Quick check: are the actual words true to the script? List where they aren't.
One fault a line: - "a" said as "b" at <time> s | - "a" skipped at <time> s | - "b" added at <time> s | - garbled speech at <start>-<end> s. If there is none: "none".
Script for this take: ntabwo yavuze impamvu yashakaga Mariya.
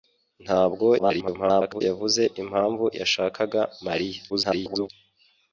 - garbled speech at 1.0-1.8 s
- garbled speech at 4.3-4.9 s